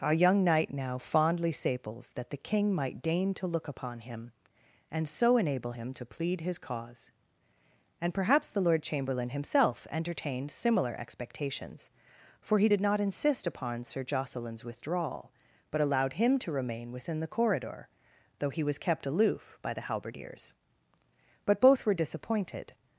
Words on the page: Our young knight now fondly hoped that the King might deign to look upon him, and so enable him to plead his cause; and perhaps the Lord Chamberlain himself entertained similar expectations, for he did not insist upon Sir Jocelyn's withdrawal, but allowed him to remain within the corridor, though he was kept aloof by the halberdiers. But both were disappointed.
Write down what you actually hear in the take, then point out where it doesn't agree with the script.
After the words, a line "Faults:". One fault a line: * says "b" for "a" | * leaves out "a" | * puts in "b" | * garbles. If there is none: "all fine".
Our young knight now fondly saples that the King might deign to look upon him, and so enable him to plead his cause; and perhaps the Lord Chamberlain himself entertained similar expectations, for he did not insist upon Sir Jocelyn's withdrawal, but allowed him to remain within the corridor, though he was kept aloof by the halberdiers. But both were disappointed.
Faults:
* says "saples" for "hoped"